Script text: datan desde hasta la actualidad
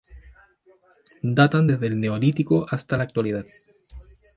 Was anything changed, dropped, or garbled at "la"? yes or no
no